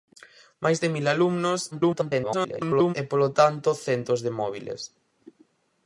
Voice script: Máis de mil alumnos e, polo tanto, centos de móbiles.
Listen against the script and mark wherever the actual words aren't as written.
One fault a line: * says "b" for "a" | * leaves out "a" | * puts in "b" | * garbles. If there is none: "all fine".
* garbles